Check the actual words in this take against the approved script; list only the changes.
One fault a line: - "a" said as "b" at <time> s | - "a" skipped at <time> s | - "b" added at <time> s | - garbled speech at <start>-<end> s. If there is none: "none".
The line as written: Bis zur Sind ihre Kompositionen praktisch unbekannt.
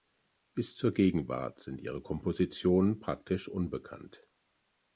- "Gegenwart" added at 0.9 s